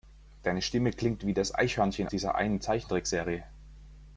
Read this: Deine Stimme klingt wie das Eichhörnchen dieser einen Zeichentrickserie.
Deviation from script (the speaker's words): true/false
false